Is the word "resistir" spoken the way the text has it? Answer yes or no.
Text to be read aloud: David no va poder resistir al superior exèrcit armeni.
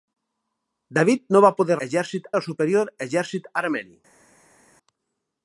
no